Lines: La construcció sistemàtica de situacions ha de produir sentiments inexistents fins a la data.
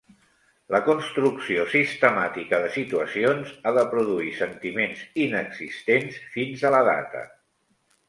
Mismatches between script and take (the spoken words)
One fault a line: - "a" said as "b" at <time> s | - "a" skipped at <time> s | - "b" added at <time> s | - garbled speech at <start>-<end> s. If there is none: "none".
none